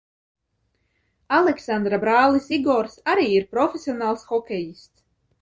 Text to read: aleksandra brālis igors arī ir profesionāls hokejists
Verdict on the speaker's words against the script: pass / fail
pass